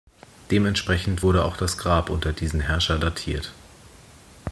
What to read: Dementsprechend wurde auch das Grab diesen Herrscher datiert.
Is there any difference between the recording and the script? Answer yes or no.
yes